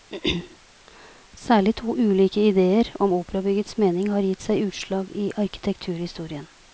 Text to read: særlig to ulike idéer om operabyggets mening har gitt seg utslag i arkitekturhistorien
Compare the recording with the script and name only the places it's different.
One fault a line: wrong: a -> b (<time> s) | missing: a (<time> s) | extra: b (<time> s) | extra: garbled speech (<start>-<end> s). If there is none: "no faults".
no faults